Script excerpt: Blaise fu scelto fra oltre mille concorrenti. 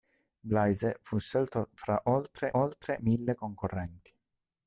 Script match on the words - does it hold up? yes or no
no